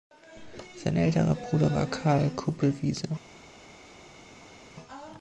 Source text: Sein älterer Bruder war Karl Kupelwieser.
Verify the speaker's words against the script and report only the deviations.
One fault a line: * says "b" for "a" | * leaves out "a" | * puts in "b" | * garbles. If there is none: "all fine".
all fine